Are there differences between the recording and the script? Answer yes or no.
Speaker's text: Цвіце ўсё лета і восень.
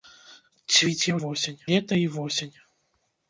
yes